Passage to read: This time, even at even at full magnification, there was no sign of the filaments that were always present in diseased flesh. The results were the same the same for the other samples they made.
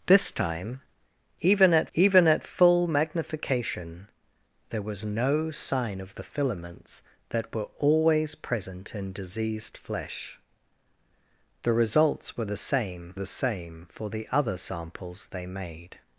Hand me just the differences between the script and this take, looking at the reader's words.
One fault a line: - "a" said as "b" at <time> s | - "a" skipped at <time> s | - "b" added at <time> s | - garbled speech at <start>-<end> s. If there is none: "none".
none